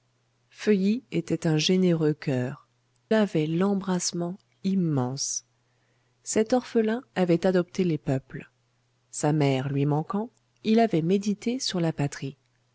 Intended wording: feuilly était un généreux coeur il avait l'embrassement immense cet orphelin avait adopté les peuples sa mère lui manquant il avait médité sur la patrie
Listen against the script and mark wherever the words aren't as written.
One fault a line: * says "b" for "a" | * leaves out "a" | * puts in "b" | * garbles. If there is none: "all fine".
* leaves out "il"